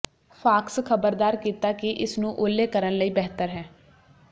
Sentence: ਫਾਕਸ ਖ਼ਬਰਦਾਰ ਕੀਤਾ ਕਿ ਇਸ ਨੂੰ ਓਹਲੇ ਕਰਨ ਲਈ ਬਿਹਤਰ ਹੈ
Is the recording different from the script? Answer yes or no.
no